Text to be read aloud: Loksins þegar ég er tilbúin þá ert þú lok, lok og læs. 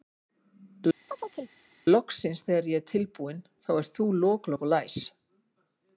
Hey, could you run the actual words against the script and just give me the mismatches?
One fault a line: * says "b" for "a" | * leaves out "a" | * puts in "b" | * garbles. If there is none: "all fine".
all fine